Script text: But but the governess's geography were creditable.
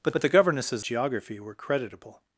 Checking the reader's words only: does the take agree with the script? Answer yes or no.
yes